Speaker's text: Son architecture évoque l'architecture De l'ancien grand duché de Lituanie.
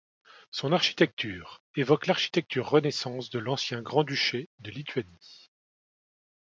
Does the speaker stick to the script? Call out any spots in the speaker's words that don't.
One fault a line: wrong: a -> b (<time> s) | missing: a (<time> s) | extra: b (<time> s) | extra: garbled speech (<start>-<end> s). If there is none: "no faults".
extra: Renaissance (2.7 s)